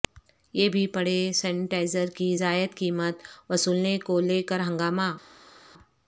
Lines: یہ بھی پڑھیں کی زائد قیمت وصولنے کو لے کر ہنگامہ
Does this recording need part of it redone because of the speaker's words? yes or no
yes